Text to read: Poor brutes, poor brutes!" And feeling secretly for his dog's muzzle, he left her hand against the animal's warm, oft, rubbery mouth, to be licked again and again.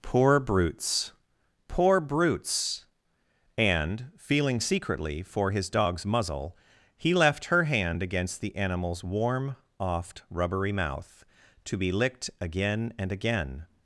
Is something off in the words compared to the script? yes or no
no